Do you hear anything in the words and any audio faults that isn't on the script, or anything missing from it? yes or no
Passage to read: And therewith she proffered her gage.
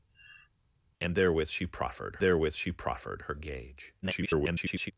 yes